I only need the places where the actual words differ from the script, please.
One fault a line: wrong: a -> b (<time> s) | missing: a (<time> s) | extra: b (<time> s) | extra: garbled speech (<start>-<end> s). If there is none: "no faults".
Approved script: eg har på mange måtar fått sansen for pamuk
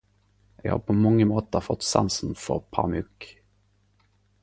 no faults